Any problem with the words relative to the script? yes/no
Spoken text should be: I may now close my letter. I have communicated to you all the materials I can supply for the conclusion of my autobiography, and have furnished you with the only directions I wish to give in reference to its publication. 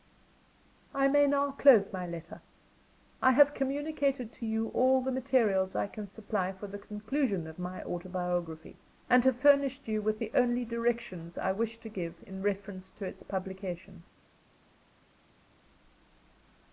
no